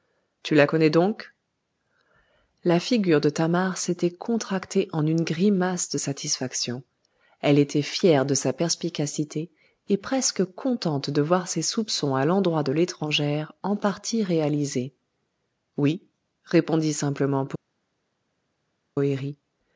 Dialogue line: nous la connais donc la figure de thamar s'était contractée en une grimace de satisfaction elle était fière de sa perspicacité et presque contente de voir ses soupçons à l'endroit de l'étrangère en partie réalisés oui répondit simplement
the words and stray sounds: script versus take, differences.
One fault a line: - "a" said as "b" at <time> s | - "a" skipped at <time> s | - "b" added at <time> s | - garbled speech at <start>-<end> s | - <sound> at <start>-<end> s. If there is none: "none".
- "nous" said as "tu" at 0.4 s